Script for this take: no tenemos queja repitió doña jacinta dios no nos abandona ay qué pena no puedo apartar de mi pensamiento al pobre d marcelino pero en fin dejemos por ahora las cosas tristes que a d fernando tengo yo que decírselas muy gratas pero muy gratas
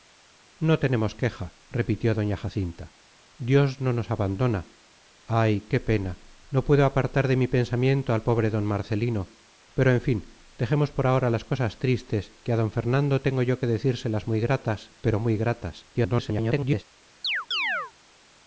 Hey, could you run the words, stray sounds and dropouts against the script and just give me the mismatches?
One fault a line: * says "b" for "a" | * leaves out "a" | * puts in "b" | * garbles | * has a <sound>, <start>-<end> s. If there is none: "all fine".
* garbles
* has a chirp, 17.2-17.9 s